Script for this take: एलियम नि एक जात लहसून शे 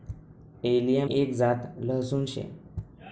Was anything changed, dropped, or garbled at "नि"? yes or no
yes